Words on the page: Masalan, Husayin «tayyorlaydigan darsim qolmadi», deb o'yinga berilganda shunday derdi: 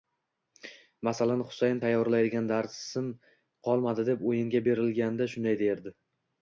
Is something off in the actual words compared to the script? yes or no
no